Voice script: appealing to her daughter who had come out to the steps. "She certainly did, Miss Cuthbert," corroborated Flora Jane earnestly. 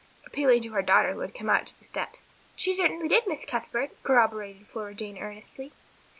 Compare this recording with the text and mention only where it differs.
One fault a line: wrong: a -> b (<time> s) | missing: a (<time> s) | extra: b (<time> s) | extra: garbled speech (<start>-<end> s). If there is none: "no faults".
no faults